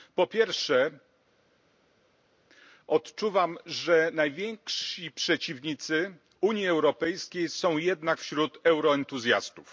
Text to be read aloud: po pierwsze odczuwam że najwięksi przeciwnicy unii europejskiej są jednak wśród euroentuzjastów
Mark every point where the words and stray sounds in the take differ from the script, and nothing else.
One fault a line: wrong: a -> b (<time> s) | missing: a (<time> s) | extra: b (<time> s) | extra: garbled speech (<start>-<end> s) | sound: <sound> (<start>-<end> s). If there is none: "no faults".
no faults